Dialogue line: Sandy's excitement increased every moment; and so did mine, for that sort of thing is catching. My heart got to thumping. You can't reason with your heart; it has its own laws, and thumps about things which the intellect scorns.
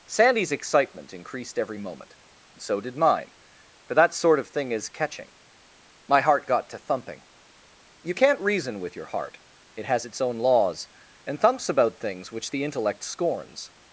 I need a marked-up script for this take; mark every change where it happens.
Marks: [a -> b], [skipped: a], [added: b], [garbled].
Sandy's excitement increased every moment; [skipped: and] so did mine, for that sort of thing is catching. My heart got to thumping. You can't reason with your heart; it has its own laws, and thumps about things which the intellect scorns.